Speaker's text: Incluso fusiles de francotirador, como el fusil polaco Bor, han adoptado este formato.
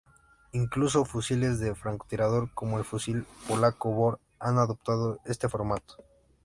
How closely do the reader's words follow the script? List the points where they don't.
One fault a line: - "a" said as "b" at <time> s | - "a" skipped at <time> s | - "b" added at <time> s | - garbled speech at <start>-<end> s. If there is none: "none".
none